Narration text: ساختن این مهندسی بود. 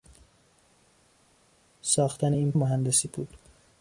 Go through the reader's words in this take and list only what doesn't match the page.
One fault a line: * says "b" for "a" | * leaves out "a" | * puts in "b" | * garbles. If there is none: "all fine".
all fine